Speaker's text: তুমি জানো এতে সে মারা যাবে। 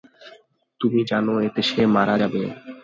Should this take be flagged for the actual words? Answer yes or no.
no